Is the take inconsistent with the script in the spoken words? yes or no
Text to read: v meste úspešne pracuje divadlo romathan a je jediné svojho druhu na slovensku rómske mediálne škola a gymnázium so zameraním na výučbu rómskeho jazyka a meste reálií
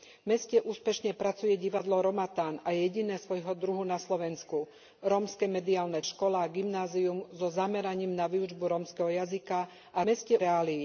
no